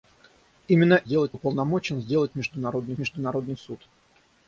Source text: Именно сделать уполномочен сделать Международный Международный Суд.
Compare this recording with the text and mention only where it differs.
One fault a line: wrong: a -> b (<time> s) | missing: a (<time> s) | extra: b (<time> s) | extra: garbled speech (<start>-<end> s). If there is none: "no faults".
no faults